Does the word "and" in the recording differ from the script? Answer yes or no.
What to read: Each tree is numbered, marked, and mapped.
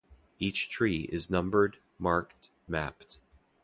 yes